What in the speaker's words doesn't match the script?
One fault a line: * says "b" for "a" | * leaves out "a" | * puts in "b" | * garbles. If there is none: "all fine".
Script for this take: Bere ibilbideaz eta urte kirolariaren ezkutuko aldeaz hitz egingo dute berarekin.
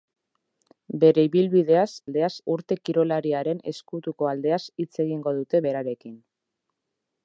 * says "aldeaz" for "eta"